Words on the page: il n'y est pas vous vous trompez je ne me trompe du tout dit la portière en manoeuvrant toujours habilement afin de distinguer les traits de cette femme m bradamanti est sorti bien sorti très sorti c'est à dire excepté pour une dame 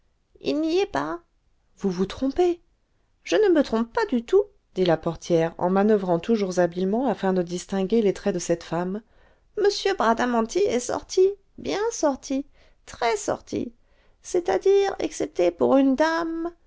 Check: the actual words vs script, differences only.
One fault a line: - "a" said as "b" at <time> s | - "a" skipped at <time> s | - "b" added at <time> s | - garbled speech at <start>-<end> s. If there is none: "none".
- "pas" added at 3.9 s